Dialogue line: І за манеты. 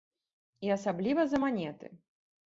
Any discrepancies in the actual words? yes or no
yes